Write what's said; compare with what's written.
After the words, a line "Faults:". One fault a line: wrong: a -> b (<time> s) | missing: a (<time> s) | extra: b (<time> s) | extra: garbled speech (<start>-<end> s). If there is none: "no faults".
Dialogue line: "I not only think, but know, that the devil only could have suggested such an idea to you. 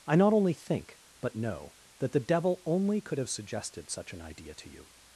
"I not only think, but know, that the devil only could have suggested such an idea to you.
Faults:
no faults